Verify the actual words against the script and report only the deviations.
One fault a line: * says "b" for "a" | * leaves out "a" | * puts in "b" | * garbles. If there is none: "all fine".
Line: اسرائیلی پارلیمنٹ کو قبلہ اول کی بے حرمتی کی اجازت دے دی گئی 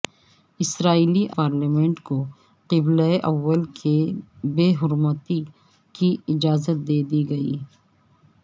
all fine